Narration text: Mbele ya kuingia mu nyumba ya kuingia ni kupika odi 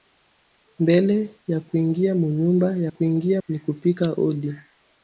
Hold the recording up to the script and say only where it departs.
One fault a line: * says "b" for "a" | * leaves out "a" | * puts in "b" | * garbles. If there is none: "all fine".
all fine